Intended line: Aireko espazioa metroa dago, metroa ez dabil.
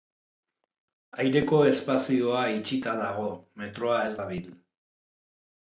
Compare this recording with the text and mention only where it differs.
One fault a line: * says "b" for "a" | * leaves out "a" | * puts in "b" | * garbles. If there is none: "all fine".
* says "itxita" for "metroa"